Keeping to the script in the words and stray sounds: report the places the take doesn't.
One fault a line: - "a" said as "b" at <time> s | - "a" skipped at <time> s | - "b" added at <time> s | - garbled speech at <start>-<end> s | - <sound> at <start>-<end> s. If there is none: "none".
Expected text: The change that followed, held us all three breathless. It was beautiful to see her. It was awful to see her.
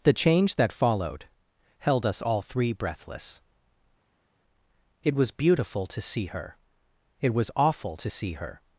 none